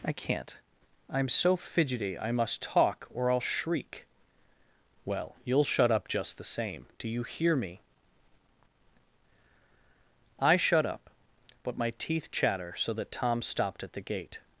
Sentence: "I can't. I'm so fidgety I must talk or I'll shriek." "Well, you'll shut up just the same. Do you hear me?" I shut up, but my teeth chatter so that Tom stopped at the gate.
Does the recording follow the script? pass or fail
pass